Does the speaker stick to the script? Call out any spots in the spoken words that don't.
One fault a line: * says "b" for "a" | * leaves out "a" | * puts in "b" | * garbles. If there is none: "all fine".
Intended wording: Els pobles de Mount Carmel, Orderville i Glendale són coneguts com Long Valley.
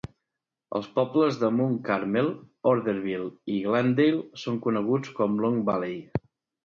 all fine